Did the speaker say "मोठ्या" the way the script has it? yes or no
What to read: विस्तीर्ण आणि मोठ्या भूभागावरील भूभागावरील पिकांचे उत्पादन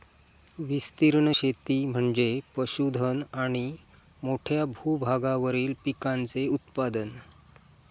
yes